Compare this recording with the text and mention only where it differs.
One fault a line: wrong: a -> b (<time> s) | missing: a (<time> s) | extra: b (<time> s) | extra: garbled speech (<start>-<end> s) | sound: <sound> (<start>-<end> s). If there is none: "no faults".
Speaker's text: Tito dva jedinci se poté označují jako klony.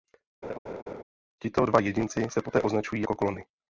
sound: laugh (0.4-1.0 s)